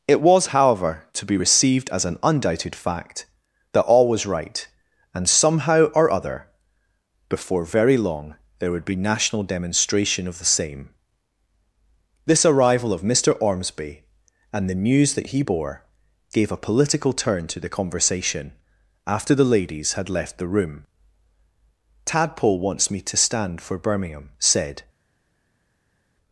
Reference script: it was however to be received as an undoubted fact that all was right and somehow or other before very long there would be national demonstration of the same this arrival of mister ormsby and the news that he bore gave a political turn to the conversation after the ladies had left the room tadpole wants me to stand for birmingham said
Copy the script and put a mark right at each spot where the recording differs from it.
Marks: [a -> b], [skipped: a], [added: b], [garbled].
it was however to be received as an undoubted fact that all was right and somehow or other before very long there would be national demonstration of the same this arrival of mister ormsby and the news that he bore gave a political turn to the conversation after the ladies had left the room tadpole wants me to stand for birmingham said